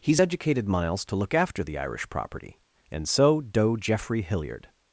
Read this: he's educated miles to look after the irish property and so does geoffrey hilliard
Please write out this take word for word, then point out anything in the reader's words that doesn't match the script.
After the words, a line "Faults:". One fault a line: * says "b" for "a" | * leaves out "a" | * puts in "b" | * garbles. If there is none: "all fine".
he's educated miles to look after the irish property and so doe geoffrey hilliard
Faults:
* says "doe" for "does"